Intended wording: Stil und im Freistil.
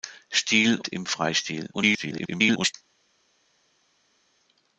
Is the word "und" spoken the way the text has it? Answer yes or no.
no